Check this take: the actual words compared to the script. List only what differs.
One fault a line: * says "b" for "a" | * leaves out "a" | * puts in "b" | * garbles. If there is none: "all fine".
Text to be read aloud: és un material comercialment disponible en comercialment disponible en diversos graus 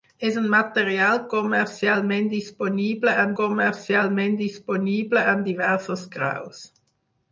all fine